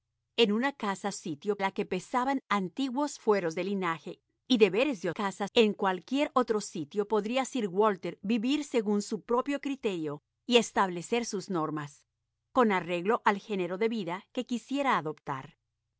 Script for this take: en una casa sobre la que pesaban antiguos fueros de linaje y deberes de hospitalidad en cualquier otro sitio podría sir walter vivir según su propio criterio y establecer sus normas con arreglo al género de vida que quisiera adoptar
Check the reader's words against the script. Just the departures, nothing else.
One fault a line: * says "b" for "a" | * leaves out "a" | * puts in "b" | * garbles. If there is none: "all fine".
* says "sitio" for "sobre"
* says "casa" for "hospitalidad"